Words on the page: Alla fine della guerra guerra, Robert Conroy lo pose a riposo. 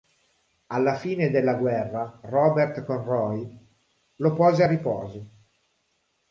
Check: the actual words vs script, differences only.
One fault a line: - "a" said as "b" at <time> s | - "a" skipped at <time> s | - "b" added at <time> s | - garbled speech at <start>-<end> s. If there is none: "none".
- "guerra" skipped at 2.2 s